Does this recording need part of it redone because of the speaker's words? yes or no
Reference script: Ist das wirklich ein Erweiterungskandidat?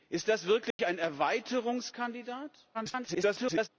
yes